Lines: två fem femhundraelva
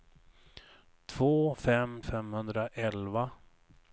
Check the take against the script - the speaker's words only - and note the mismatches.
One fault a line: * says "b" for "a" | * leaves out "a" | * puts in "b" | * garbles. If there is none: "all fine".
all fine